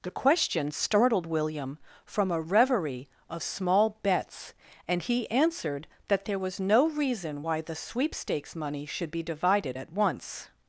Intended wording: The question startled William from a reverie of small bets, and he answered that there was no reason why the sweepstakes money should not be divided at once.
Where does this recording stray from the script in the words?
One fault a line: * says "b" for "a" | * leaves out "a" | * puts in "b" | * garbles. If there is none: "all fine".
* leaves out "not"